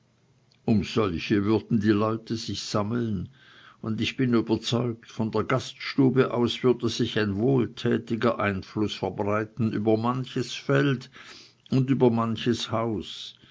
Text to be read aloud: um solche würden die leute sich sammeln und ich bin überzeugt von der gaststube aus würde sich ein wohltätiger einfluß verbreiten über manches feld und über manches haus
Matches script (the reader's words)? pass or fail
pass